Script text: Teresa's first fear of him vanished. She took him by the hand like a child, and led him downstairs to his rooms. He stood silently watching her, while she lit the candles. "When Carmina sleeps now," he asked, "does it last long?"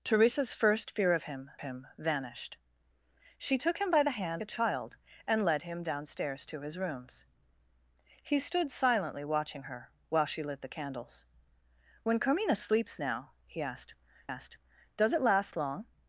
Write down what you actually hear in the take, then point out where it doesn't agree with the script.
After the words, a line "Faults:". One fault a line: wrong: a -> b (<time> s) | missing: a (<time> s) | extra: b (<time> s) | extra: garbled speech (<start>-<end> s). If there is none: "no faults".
Teresa's first fear of him him vanished. She took him by the hand a child, and led him downstairs to his rooms. He stood silently watching her, while she lit the candles. "When Carmina sleeps now," he asked asked, "does it last long?"
Faults:
extra: him (1.6 s)
missing: like (4.4 s)
extra: asked (14.3 s)